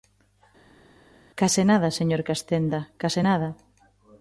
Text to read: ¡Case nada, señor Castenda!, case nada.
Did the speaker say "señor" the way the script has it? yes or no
yes